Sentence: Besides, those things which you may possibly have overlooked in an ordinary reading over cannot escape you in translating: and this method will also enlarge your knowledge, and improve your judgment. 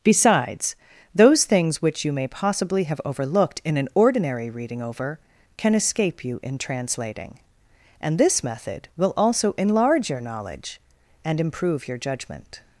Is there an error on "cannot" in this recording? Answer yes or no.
yes